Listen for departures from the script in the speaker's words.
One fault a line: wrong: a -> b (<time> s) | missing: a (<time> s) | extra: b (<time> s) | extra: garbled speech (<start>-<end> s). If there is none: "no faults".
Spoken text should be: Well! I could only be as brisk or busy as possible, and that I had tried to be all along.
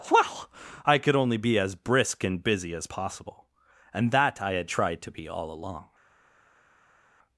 wrong: or -> and (2.2 s)